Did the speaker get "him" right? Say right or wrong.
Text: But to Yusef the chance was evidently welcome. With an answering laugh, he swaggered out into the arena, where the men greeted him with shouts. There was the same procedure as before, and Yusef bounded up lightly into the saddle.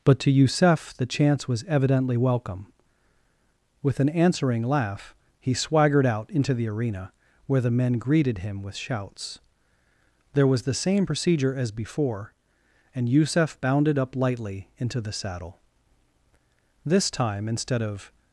right